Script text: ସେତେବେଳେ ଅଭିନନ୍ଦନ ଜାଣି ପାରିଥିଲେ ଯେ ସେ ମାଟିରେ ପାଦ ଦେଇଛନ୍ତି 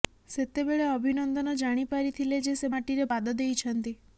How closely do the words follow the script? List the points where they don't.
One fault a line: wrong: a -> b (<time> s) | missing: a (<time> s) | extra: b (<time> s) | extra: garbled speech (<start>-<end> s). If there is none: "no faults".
no faults